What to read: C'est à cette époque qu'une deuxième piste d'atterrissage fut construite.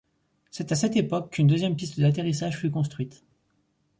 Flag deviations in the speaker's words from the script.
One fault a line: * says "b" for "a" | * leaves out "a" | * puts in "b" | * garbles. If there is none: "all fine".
all fine